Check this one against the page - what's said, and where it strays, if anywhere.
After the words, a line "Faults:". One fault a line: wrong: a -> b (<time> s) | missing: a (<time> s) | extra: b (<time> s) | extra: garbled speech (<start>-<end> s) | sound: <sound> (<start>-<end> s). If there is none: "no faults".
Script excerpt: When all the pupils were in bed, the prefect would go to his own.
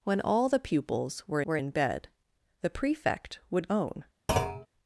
When all the pupils were were in bed, the prefect would own.
Faults:
extra: were (1.4 s)
missing: go to his (3.7 s)
sound: thud (4.3-4.7 s)